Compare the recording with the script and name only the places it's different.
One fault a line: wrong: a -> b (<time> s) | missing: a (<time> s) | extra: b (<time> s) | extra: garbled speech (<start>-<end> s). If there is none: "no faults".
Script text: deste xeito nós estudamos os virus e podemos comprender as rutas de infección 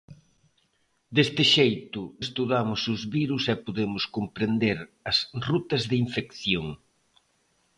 missing: nós (2.0 s)